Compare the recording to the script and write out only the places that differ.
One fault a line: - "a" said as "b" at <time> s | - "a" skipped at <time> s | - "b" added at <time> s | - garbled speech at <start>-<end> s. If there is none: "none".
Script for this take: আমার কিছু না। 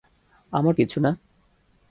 none